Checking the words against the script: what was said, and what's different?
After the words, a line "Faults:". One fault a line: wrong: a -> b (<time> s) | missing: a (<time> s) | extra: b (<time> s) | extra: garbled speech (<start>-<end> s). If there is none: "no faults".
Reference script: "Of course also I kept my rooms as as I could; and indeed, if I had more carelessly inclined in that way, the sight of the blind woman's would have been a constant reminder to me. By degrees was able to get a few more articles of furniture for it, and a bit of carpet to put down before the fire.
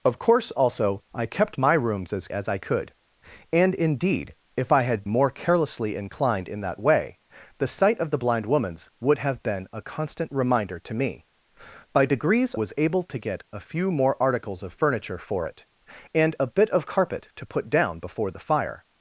"Of course also I kept my rooms as as I could; and indeed, if I had more carelessly inclined in that way, the sight of the blind woman's would have been a constant reminder to me. By degrees was able to get a few more articles of furniture for it, and a bit of carpet to put down before the fire.
Faults:
no faults